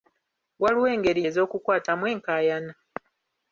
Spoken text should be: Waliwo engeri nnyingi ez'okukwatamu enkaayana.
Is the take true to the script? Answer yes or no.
no